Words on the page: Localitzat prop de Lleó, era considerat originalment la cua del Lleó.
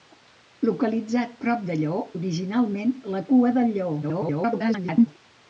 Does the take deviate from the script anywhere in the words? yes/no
yes